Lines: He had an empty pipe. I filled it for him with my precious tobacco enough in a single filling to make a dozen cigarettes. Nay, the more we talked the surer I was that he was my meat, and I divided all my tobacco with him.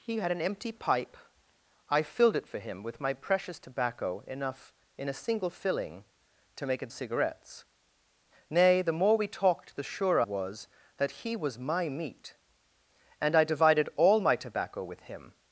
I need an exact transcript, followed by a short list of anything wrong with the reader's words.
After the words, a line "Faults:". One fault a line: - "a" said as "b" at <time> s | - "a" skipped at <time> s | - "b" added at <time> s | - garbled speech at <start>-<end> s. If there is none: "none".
He had an empty pipe. I filled it for him with my precious tobacco enough in a single filling to make a cigarettes. Nay, the more we talked the surer was that he was my meat, and I divided all my tobacco with him.
Faults:
- "dozen" skipped at 6.9 s
- "I" skipped at 10.2 s